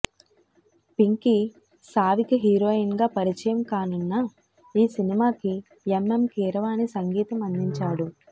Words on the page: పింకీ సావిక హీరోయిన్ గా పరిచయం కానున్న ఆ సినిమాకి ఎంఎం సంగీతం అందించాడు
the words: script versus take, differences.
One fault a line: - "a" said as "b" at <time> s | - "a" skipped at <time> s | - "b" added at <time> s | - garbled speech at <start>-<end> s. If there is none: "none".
- "ఆ" said as "ఈ" at 4.7 s
- "కీరవాణి" added at 6.4 s